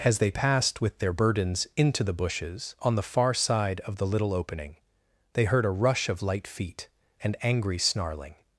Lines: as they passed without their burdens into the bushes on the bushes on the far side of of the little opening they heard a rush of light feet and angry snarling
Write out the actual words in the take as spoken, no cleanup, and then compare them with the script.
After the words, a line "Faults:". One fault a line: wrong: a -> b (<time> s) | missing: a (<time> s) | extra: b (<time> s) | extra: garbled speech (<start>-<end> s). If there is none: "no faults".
as they passed with their burdens into the bushes on the far side of the little opening they heard a rush of light feet and angry snarling
Faults:
wrong: without -> with (0.8 s)
missing: bushes on the (3.0 s)
missing: of (4.0 s)